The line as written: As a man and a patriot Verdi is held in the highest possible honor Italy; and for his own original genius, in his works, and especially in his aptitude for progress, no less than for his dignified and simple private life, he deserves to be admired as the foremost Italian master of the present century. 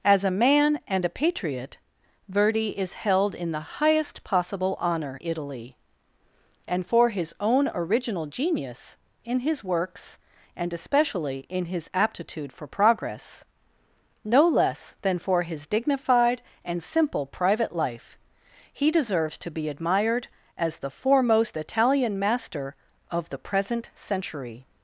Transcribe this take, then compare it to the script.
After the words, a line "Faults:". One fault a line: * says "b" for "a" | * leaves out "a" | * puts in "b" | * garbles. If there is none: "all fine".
As a man and a patriot Verdi is held in the highest possible honor Italy; and for his own original genius, in his works, and especially in his aptitude for progress, no less than for his dignified and simple private life, he deserves to be admired as the foremost Italian master of the present century.
Faults:
all fine